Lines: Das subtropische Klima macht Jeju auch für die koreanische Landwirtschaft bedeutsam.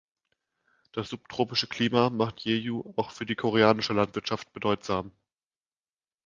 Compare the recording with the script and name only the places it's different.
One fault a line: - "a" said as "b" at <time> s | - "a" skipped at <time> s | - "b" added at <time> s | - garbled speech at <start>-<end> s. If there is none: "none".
none